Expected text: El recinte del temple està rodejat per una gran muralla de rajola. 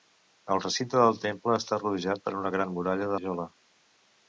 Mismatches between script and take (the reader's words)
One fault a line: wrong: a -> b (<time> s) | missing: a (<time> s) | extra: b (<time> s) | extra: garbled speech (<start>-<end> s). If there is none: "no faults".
missing: de (3.1 s)